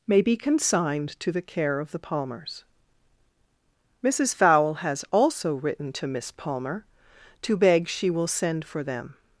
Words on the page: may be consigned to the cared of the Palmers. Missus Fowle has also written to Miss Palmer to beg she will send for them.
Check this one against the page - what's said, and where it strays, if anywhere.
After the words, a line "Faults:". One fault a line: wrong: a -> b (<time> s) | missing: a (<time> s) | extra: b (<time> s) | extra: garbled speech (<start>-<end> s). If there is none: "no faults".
may be consigned to the care of the Palmers. Missus Fowle has also written to Miss Palmer to beg she will send for them.
Faults:
wrong: cared -> care (1.4 s)